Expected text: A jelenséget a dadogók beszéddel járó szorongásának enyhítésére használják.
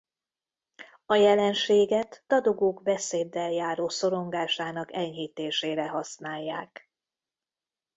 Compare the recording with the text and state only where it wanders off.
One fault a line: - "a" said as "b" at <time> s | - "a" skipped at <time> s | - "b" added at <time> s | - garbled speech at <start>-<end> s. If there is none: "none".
- "a" skipped at 2.2 s